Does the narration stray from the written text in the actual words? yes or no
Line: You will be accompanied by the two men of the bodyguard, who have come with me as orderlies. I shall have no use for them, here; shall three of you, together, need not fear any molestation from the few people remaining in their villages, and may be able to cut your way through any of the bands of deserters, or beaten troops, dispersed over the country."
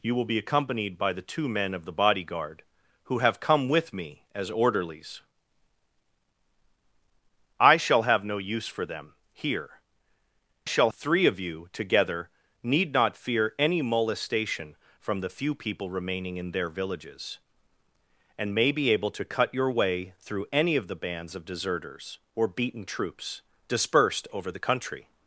no